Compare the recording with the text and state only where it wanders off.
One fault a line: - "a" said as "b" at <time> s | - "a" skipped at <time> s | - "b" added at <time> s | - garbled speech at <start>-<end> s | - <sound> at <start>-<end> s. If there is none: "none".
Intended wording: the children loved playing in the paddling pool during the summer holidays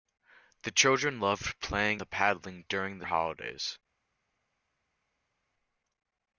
- "in" skipped at 2.0 s
- "pool" skipped at 2.6 s
- "summer" skipped at 3.0 s